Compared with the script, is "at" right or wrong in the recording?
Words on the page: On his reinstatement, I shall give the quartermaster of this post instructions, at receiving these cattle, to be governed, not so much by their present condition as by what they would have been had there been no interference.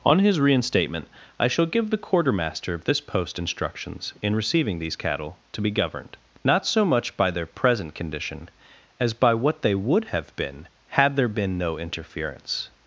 wrong